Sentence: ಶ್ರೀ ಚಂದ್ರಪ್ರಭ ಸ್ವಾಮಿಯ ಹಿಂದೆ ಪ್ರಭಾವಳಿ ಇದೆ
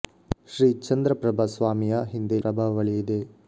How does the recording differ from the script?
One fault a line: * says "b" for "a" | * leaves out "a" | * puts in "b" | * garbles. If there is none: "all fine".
all fine